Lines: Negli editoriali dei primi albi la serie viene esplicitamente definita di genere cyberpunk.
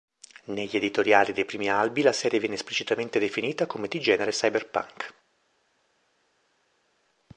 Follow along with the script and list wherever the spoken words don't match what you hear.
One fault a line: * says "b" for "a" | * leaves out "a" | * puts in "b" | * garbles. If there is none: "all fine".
* puts in "come"